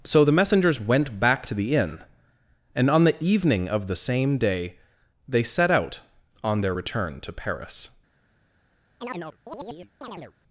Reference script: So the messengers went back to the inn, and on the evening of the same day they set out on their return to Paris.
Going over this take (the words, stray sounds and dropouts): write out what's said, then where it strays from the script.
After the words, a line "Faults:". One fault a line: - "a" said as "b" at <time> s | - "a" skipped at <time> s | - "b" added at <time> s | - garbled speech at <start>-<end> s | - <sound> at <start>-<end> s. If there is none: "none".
So the messengers went back to the inn, and on the evening of the same day they set out on their return to Paris.
Faults:
- chirp at 9.0-10.3 s